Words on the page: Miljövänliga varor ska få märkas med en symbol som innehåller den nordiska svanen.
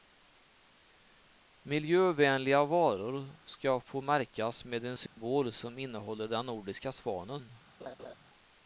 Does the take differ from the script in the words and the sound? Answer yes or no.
yes